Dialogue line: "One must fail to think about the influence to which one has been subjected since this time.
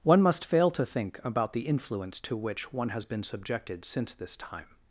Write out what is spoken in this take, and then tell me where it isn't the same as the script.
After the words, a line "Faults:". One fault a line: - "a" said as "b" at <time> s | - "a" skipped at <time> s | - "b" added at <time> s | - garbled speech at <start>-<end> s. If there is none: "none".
"One must fail to think about the influence to which one has been subjected since this time.
Faults:
none